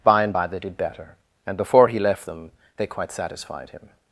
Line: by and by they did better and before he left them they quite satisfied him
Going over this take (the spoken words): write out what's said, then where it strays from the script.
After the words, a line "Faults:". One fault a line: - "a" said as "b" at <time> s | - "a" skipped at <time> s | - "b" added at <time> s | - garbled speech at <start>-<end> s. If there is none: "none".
by and by they did better and before he left them they quite satisfied him
Faults:
none